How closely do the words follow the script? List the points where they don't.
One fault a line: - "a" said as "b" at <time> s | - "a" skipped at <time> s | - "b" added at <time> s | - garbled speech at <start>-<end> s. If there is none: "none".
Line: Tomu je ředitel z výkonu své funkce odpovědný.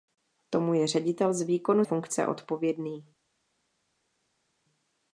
- "své" skipped at 1.9 s